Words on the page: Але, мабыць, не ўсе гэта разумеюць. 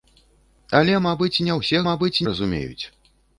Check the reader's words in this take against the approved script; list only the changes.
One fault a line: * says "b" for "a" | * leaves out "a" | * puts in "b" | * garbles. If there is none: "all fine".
* says "мабыць" for "гэта"